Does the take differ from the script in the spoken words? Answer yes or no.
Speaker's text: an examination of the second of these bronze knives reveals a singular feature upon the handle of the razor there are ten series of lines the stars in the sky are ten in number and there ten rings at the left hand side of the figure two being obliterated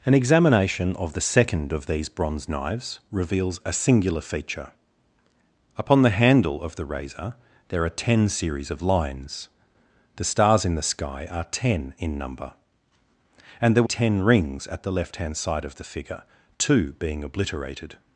no